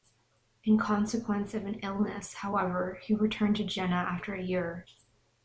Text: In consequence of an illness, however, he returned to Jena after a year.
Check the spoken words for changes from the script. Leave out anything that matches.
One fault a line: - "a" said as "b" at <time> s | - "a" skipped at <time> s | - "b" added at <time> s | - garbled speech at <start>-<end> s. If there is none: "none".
none